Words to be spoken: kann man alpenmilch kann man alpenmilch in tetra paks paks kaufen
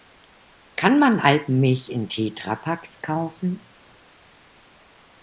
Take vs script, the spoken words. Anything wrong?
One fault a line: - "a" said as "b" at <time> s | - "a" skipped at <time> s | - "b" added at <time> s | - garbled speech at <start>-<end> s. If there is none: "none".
- "kann man alpenmilch" skipped at 1.9 s
- "paks" skipped at 3.0 s